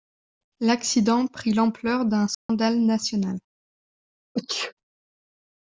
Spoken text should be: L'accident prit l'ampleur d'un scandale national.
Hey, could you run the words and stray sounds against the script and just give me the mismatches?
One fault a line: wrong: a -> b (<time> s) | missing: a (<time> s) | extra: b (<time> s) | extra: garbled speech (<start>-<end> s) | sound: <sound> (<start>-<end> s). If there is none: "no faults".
sound: dropout (2.3-2.5 s)
sound: sneeze (4.4-4.7 s)